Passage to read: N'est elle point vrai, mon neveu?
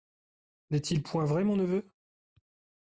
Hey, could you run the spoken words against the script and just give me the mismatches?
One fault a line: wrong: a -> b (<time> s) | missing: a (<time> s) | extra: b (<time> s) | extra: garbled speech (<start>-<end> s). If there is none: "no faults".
wrong: elle -> il (0.8 s)